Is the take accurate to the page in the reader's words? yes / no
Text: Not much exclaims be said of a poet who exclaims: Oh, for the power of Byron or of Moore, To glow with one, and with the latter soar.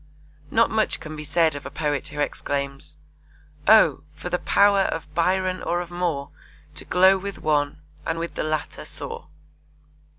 no